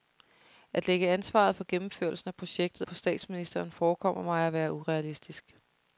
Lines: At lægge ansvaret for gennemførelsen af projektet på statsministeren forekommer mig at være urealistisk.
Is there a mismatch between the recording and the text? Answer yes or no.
no